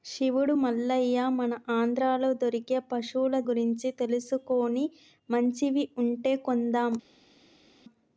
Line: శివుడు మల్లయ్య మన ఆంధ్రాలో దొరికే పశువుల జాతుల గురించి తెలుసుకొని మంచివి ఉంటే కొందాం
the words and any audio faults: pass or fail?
fail